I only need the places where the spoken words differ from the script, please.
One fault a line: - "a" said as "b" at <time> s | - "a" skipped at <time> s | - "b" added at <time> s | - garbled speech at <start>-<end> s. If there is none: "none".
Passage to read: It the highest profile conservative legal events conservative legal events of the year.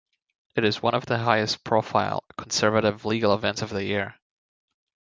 - "is one of" added at 0.6 s
- "conservative legal events" skipped at 3.6 s